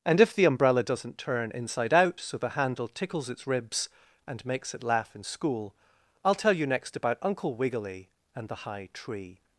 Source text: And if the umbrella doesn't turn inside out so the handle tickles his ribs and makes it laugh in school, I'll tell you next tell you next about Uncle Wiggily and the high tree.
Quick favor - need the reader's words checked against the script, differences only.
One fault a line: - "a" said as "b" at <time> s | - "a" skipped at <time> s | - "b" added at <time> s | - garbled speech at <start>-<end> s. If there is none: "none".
- "his" said as "its" at 3.3 s
- "tell you next" skipped at 7.0 s